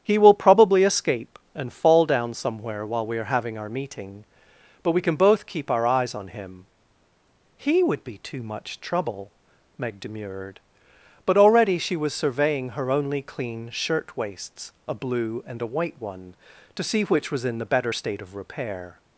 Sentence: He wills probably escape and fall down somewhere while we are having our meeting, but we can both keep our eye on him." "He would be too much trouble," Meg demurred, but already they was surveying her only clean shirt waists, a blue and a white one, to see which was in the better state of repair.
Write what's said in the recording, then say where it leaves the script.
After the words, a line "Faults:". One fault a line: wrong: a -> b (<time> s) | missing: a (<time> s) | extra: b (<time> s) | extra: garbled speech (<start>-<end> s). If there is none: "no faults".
He will probably escape and fall down somewhere while we are having our meeting, but we can both keep our eyes on him." "He would be too much trouble," Meg demurred, but already she was surveying her only clean shirt waists, a blue and a white one, to see which was in the better state of repair.
Faults:
wrong: wills -> will (0.2 s)
wrong: eye -> eyes (5.8 s)
wrong: they -> she (11.8 s)